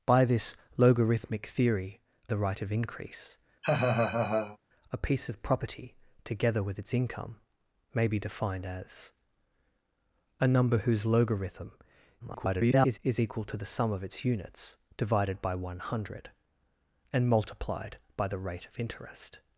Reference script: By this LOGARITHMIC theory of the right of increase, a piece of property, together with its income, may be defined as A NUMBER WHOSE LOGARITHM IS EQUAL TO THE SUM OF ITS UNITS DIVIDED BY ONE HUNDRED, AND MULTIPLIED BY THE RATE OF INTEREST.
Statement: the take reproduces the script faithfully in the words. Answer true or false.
false